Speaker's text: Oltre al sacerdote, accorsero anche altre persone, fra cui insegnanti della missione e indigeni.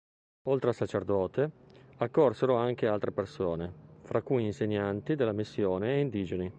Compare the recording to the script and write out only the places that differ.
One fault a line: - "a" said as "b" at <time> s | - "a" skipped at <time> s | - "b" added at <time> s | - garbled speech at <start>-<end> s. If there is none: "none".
none